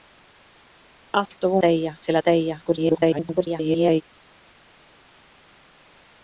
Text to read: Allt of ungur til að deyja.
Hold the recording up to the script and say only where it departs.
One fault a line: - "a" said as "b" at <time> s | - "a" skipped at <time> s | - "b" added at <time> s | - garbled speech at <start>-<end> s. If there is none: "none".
- "ungur" said as "deyja" at 1.6 s
- garbled speech at 2.6-4.0 s